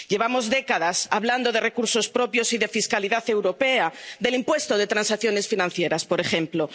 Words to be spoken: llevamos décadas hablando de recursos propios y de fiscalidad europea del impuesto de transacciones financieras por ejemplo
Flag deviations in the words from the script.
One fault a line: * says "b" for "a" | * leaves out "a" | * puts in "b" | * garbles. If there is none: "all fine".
all fine